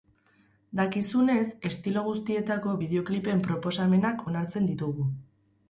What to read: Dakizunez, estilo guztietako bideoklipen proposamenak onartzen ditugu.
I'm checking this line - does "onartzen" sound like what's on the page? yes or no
yes